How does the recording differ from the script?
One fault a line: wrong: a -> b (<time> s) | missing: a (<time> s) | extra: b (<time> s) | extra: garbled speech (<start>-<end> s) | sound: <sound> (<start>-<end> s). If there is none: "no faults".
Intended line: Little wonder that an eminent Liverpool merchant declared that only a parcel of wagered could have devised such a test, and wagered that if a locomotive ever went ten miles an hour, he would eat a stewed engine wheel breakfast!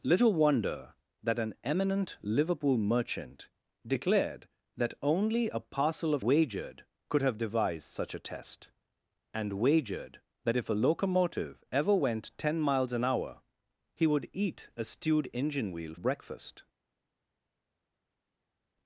no faults